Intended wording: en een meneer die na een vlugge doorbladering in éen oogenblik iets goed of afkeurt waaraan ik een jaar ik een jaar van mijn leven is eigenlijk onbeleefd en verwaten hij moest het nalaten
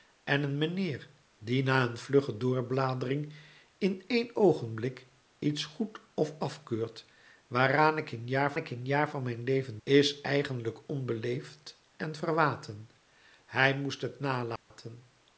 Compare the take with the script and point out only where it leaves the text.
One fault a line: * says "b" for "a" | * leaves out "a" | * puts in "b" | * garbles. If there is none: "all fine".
all fine